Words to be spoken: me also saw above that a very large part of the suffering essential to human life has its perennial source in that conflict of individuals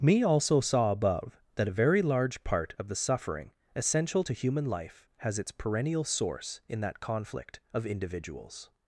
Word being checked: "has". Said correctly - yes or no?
yes